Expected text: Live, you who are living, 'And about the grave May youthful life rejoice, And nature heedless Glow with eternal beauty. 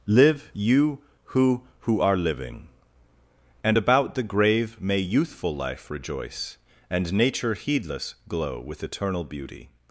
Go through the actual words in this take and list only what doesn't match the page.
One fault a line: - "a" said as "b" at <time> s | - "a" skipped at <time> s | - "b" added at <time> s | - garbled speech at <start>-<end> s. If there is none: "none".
- "who" added at 1.8 s